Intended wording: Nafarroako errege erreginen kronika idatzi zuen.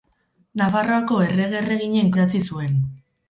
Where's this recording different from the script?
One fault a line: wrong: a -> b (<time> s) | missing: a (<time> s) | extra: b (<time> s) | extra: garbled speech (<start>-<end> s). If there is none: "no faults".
missing: kronika (2.1 s)